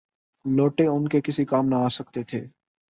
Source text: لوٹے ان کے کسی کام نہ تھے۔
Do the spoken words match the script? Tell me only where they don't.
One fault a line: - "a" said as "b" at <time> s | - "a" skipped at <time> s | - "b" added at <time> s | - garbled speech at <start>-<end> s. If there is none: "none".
- "آ سکتے" added at 1.8 s